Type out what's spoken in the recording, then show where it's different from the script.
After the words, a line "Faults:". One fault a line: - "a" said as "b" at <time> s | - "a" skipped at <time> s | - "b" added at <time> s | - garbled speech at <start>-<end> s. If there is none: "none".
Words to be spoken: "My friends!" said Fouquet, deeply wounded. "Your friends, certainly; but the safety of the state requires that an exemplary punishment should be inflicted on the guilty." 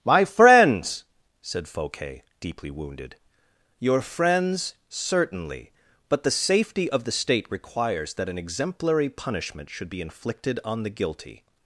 "My friends!" said Fouquet, deeply wounded. "Your friends, certainly; but the safety of the state requires that an exemplary punishment should be inflicted on the guilty."
Faults:
none